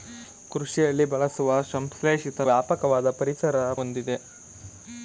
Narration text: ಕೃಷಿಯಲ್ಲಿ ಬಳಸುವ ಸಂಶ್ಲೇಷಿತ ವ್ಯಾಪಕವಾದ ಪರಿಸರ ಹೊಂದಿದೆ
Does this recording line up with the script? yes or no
yes